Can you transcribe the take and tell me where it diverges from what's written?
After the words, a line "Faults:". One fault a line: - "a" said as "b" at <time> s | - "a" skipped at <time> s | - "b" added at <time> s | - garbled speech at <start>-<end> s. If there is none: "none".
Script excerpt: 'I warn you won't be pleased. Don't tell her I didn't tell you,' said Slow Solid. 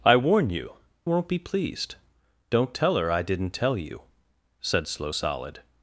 'I warn you won't be pleased. Don't tell her I didn't tell you,' said Slow Solid.
Faults:
none